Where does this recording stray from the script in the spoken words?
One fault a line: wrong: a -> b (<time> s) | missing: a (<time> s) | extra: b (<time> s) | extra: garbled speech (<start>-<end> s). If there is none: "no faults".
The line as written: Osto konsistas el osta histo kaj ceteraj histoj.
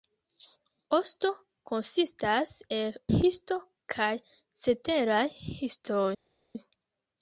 missing: osta (3.0 s)